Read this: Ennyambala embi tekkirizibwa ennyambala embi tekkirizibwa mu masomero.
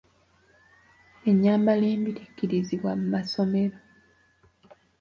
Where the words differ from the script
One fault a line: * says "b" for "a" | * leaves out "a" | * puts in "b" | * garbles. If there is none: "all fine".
* leaves out "ennyambala embi tekkirizibwa"